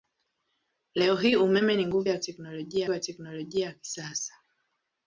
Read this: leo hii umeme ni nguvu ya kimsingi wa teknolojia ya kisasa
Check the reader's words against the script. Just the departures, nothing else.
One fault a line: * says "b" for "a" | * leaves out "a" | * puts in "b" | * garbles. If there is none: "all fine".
* says "teknolojia" for "kimsingi"